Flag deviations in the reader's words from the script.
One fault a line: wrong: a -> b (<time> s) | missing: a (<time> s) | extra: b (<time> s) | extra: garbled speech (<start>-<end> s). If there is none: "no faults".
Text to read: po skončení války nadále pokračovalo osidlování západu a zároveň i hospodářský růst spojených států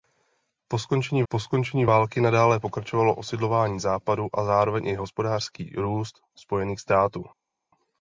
extra: po skončení (1.3 s)